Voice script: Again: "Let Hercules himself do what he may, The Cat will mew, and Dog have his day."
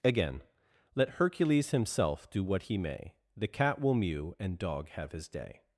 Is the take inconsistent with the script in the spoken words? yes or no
no